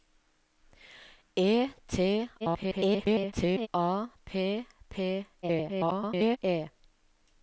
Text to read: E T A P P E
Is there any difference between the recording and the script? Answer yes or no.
yes